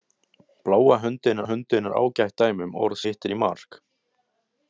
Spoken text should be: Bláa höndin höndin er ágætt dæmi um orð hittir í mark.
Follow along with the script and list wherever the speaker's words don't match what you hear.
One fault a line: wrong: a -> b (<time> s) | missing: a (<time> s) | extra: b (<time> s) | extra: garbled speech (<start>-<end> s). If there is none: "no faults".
no faults